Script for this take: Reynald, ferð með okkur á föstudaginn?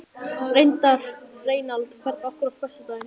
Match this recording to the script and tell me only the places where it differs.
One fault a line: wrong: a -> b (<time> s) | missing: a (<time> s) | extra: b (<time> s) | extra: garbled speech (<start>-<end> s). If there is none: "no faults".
no faults